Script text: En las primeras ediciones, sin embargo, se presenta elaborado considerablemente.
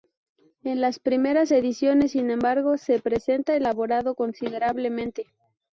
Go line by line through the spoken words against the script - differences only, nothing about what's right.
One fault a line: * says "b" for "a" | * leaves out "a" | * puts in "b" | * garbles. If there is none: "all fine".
all fine